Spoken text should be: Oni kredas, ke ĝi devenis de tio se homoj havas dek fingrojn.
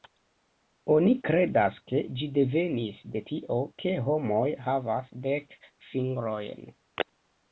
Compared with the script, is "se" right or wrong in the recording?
wrong